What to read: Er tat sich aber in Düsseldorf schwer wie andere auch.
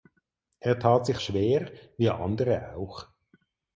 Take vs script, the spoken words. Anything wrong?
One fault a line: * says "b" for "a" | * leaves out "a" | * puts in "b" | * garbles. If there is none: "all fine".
* leaves out "aber in Düsseldorf"